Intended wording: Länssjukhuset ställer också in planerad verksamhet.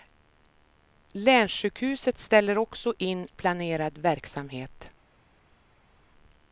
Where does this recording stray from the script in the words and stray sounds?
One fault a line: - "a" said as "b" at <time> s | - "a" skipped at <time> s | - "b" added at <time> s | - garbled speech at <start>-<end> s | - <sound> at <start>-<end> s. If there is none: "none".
none